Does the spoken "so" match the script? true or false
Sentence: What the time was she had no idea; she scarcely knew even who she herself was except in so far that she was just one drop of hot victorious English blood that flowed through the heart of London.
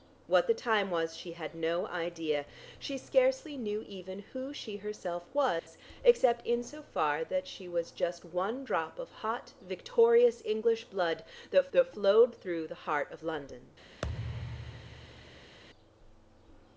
true